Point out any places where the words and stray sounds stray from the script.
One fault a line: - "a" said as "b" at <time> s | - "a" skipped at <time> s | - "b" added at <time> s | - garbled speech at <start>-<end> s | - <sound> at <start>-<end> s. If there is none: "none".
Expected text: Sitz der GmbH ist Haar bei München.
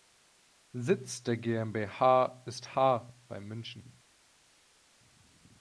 none